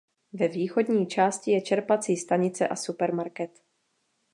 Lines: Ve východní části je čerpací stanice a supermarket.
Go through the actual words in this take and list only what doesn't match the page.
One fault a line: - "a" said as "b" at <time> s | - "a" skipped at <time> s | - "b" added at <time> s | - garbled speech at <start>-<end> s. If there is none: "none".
none